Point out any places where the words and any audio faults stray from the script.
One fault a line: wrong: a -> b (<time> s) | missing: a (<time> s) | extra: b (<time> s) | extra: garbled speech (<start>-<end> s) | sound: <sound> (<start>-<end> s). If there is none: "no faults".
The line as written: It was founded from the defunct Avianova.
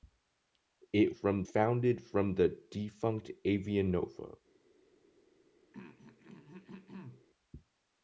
wrong: was -> from (1.1 s)
sound: throat clearing (5.7-7.3 s)